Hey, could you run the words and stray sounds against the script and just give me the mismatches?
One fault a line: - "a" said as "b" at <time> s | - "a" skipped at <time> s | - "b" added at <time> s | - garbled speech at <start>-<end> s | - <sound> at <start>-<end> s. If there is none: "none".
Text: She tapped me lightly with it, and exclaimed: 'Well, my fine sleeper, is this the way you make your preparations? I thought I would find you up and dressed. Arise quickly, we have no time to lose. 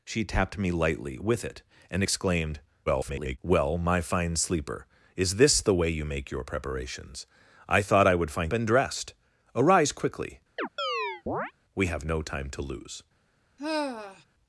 - garbled speech at 2.9-3.4 s
- "you up" skipped at 8.5 s
- chirp at 10.6-11.5 s
- sigh at 13.6-14.2 s